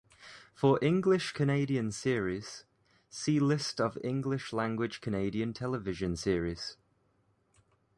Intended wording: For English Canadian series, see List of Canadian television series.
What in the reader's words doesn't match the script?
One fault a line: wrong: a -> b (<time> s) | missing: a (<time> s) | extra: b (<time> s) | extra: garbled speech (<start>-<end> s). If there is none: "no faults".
extra: English language (4.0 s)